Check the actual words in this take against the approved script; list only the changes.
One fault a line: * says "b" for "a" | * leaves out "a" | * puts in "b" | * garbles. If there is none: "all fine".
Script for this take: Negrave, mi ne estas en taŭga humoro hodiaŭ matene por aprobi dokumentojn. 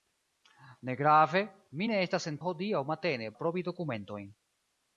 * leaves out "taŭga humoro"
* leaves out "por"